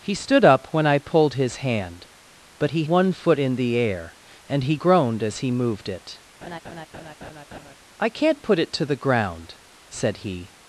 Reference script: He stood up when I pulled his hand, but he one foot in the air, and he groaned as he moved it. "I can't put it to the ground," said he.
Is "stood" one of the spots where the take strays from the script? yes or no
no